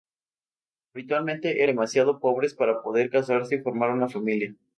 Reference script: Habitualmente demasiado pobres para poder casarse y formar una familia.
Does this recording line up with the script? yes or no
yes